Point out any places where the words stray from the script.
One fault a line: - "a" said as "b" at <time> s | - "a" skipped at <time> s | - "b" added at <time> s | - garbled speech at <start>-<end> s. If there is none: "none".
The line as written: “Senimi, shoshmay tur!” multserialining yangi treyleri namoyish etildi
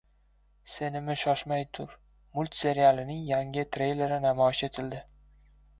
none